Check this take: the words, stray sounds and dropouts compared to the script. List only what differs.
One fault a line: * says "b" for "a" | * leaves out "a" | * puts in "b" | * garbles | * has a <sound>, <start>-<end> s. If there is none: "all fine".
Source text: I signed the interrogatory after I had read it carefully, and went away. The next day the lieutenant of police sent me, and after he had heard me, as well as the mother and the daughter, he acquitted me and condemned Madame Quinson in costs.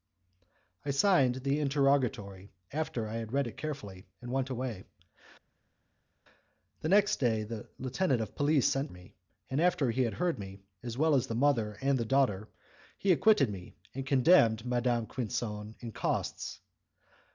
all fine